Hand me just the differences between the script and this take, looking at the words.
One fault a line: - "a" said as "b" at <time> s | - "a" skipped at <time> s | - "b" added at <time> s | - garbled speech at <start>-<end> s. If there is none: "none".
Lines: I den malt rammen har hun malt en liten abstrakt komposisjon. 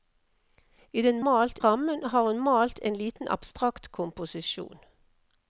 none